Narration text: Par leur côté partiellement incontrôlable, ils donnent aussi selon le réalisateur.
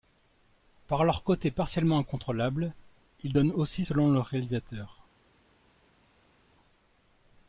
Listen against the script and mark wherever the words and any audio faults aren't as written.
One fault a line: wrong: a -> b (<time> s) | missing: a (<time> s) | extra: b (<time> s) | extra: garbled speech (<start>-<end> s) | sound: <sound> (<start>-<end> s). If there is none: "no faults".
no faults